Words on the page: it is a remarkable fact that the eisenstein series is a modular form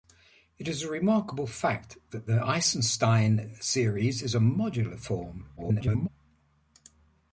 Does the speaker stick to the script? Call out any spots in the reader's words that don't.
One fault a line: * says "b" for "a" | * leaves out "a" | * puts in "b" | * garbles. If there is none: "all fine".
* garbles